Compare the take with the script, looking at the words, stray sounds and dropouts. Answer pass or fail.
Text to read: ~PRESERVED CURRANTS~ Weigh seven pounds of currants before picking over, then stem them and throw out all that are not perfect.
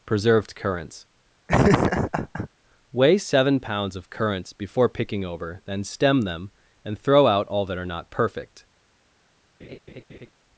fail